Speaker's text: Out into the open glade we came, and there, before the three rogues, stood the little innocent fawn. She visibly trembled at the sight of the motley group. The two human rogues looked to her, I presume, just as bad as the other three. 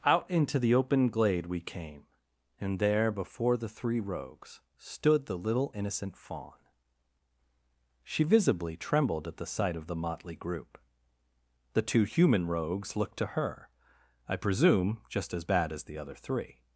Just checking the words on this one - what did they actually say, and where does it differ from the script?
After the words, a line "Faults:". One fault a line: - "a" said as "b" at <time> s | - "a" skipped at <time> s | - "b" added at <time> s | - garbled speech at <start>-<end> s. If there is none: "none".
Out into the open glade we came, and there, before the three rogues, stood the little innocent fawn. She visibly trembled at the sight of the motley group. The two human rogues looked to her, I presume, just as bad as the other three.
Faults:
none